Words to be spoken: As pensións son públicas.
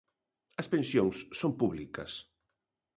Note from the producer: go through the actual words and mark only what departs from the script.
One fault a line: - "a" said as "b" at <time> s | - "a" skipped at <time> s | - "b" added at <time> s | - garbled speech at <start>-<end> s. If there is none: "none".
none